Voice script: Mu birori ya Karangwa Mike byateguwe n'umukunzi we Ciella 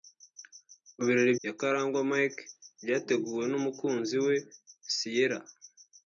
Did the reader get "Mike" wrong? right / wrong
right